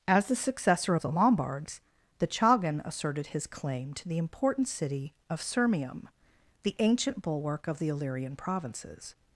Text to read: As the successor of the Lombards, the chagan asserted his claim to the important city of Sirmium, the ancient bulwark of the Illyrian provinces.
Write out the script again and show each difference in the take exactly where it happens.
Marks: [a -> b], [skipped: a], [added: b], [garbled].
As the successor of the Lombards, the chagan asserted his claim to the important city of Sirmium, the ancient bulwark of the Illyrian provinces.